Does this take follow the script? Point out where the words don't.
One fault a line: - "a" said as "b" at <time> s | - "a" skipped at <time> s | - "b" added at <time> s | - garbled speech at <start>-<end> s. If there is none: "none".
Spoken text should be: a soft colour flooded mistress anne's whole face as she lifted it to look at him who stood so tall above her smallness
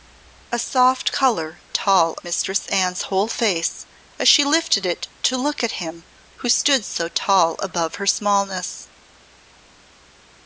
- "flooded" said as "tall" at 1.7 s